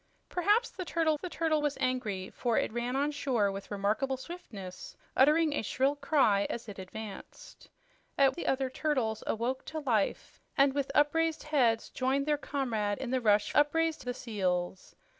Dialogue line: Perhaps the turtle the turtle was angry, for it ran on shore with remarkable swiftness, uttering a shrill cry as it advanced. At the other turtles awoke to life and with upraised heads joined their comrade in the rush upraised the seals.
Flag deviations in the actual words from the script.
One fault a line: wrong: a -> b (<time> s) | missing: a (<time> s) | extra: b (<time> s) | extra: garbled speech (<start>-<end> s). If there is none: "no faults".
no faults